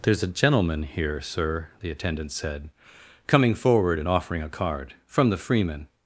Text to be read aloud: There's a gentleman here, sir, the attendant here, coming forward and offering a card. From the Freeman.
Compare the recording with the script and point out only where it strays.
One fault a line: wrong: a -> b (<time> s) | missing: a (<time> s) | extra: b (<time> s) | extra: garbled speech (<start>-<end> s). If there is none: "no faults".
wrong: here -> said (2.3 s)